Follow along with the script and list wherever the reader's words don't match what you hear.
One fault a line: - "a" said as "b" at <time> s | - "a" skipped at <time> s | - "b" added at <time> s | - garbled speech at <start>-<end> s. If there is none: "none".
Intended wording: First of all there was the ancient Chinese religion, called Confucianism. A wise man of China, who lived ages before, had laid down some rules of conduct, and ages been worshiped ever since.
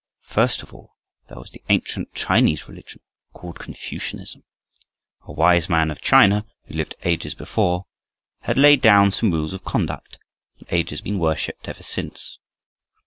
none